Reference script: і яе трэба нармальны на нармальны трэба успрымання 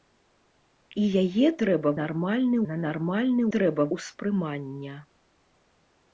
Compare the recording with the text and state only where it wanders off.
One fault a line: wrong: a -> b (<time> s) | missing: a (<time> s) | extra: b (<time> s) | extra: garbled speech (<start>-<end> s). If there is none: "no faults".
no faults